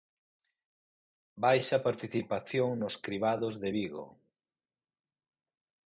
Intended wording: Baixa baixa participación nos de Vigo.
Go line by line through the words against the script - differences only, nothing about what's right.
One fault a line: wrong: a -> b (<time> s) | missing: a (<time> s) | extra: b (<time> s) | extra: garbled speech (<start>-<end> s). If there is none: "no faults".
missing: baixa (1.8 s)
extra: cribados (3.1 s)